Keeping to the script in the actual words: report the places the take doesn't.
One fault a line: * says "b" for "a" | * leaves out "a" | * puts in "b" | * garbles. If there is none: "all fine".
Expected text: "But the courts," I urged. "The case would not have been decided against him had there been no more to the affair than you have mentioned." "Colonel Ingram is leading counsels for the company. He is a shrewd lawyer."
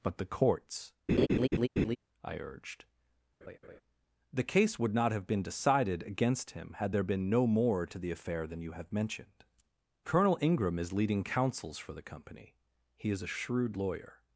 all fine